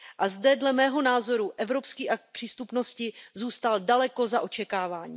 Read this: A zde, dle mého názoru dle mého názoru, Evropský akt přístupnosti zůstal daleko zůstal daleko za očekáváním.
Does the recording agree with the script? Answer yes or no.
no